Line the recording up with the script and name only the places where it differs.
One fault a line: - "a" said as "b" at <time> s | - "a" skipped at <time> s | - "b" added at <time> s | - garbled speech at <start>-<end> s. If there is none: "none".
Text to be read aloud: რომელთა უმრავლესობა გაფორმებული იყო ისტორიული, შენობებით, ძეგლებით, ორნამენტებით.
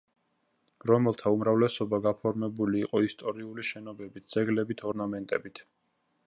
none